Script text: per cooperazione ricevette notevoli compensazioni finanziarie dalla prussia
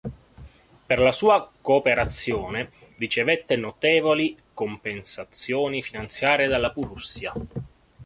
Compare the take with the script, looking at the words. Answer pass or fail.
fail